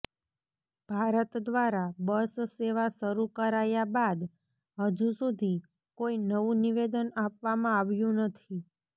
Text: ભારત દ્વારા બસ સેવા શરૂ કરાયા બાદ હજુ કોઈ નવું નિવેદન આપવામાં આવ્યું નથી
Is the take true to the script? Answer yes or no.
no